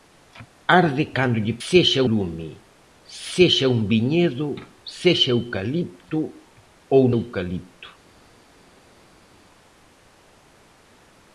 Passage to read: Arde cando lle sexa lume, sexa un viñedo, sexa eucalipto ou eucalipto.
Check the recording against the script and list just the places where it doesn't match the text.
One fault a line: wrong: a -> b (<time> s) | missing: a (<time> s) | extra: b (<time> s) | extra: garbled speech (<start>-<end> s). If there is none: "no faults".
no faults